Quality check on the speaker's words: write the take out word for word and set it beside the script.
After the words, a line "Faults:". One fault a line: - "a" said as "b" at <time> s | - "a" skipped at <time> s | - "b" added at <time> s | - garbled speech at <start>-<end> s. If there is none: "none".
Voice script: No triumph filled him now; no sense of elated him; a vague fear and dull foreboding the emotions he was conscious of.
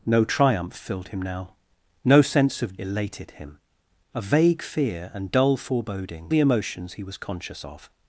No triumph filled him now; no sense of elated him; a vague fear and dull foreboding the emotions he was conscious of.
Faults:
none